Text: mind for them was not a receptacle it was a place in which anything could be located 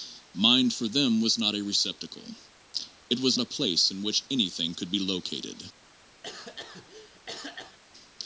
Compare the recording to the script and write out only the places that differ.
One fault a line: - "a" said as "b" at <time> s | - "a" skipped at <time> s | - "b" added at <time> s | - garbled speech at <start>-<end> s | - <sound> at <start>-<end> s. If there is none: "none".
- cough at 6.2-7.8 s